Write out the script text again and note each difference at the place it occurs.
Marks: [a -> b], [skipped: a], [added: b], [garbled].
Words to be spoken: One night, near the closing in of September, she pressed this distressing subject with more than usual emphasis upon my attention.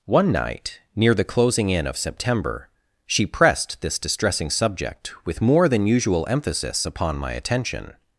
One night, near the closing in of September, she pressed this distressing subject with more than usual emphasis upon my attention.